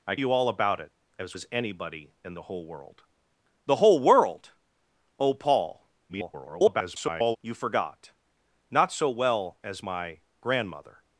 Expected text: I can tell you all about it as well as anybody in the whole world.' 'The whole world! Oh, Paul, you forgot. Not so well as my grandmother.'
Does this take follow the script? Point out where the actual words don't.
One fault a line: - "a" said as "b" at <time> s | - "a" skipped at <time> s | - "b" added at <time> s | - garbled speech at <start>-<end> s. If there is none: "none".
- "can tell" skipped at 0.1 s
- "well" skipped at 1.4 s
- garbled speech at 6.1-7.4 s